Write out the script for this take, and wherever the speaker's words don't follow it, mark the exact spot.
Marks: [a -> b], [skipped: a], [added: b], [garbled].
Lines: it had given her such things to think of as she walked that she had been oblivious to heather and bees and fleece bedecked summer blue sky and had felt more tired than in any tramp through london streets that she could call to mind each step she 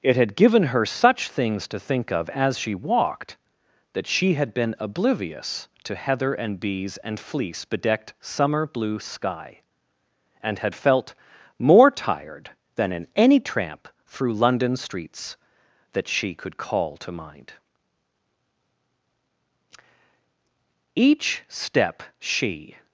it had given her such things to think of as she walked that she had been oblivious to heather and bees and fleece bedecked summer blue sky and had felt more tired than in any tramp through london streets that she could call to mind each step she